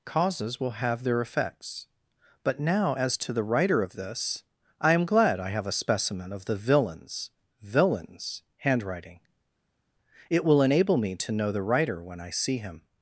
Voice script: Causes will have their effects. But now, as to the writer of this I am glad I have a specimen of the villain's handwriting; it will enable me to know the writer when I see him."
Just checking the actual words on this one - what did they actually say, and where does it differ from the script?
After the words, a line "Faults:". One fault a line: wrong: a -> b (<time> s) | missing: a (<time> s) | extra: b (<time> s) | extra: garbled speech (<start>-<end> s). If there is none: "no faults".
Causes will have their effects. But now, as to the writer of this I am glad I have a specimen of the villain's villain's handwriting; it will enable me to know the writer when I see him."
Faults:
extra: villain's (7.6 s)